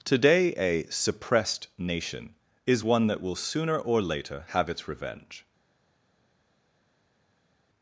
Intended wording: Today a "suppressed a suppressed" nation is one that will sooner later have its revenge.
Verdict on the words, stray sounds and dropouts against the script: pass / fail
fail